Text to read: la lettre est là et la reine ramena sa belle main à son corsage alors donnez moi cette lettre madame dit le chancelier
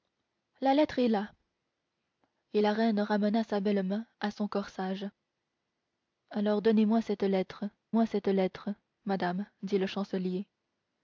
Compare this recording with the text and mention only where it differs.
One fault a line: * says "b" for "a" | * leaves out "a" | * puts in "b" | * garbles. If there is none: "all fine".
* puts in "moi cette lettre"